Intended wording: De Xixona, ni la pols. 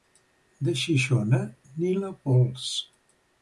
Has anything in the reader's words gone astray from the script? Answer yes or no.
no